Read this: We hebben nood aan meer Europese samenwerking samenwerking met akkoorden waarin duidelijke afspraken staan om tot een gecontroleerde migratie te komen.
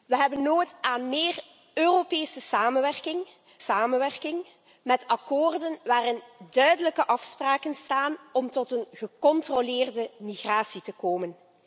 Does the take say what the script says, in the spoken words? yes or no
yes